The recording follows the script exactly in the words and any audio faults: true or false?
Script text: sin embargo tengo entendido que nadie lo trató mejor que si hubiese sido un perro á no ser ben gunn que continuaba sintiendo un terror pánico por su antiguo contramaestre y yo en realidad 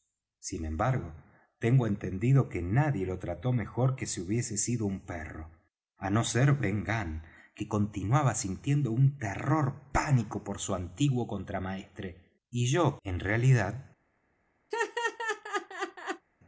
false